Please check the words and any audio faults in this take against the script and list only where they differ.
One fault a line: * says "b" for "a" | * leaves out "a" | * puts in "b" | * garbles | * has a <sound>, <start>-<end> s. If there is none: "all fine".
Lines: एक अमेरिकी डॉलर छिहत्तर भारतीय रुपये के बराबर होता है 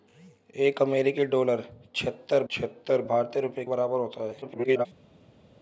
* puts in "छिहत्तर"
* leaves out "के"
* garbles